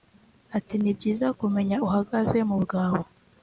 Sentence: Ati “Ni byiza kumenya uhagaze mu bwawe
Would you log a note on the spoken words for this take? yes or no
no